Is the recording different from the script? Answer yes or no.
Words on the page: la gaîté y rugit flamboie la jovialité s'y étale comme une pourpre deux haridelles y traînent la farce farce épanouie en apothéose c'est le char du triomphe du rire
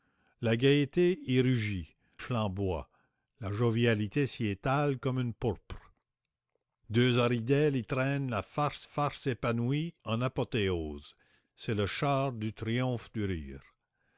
no